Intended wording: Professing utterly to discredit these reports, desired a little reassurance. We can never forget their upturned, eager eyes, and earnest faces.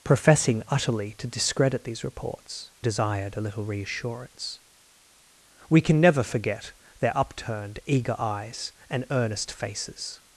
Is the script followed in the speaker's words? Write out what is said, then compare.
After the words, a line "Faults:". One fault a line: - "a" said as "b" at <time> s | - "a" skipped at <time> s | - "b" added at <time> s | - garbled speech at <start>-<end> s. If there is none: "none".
Professing utterly to discredit these reports, desired a little reassurance. We can never forget their upturned, eager eyes, and earnest faces.
Faults:
none